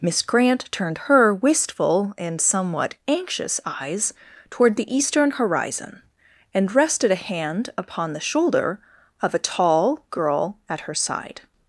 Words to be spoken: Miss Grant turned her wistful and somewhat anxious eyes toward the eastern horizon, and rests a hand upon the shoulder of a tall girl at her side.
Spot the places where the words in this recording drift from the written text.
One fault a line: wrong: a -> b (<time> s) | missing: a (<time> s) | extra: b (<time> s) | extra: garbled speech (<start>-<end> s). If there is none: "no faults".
wrong: rests -> rested (6.7 s)